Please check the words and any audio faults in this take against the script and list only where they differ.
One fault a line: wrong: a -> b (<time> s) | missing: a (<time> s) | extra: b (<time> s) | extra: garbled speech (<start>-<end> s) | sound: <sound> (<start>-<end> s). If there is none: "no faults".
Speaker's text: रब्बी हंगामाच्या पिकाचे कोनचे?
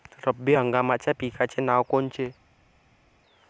extra: नावं (1.6 s)